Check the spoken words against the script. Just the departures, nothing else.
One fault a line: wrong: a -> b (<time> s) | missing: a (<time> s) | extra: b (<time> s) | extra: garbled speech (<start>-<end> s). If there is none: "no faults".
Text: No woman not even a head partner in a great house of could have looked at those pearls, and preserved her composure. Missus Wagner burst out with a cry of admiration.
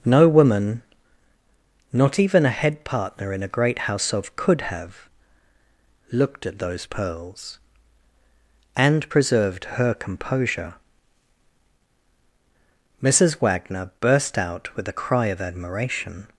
no faults